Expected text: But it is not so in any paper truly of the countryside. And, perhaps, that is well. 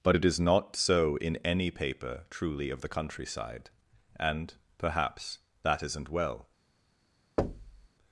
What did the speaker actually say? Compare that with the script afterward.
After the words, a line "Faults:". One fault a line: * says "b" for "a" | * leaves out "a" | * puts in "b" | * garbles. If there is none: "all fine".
But it is not so in any paper truly of the countryside. And, perhaps, that isn't well.
Faults:
* says "isn't" for "is"